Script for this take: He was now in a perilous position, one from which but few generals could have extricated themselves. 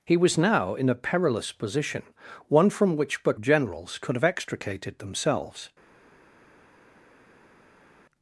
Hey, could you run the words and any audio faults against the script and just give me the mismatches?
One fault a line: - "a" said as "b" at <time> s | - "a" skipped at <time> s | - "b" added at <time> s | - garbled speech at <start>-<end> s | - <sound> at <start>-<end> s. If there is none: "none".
- "few" skipped at 3.4 s